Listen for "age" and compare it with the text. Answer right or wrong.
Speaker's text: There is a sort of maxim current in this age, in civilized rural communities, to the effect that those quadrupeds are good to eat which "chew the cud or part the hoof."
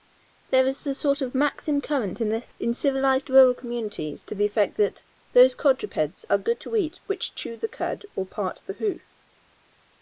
wrong